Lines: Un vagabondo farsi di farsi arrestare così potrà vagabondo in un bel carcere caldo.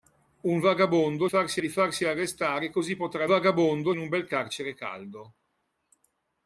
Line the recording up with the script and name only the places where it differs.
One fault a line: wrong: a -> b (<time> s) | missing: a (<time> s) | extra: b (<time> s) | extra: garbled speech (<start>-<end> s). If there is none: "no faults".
no faults